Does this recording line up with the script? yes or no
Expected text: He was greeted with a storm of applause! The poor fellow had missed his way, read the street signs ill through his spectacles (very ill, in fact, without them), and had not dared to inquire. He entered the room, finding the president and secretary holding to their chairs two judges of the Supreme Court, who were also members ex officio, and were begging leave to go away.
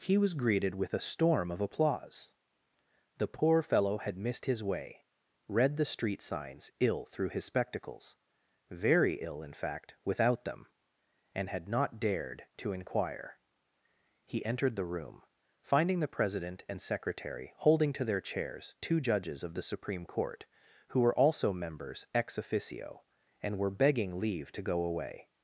yes